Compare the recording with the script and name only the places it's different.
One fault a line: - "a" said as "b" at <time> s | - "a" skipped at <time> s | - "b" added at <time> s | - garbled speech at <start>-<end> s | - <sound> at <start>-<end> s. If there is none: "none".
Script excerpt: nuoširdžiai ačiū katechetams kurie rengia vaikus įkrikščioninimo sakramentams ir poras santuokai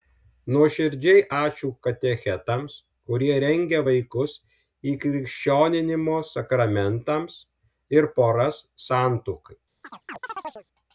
- chirp at 9.8-10.7 s